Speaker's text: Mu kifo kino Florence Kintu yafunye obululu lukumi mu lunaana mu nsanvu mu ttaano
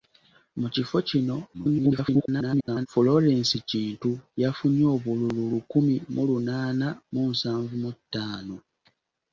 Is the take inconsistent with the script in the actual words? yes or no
yes